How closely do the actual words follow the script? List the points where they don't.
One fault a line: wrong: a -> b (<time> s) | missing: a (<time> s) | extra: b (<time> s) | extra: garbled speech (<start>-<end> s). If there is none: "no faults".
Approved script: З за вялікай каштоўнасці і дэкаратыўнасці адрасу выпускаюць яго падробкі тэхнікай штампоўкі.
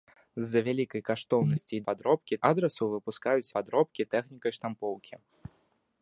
wrong: дэкаратыўнасці -> падробкі (1.9 s)
missing: яго (3.5 s)